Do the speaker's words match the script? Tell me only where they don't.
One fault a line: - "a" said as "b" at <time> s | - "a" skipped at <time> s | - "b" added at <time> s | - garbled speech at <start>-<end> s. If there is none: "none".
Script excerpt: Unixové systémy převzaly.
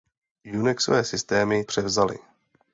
none